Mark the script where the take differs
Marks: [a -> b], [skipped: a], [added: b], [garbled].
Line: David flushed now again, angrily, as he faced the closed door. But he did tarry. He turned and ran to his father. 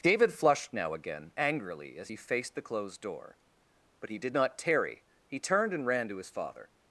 David flushed now again, angrily, as he faced the closed door. But he did [added: not] tarry. He turned and ran to his father.